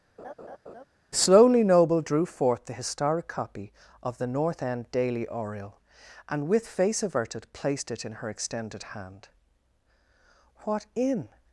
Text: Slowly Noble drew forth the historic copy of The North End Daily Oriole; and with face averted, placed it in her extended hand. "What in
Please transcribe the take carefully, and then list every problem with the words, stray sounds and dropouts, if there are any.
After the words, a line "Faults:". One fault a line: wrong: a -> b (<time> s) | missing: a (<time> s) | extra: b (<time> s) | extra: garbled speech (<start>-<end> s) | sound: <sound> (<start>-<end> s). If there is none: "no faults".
Slowly Noble drew forth the historic copy of The North End Daily Oriole; and with face averted, placed it in her extended hand. "What in
Faults:
sound: laugh (0.2-0.8 s)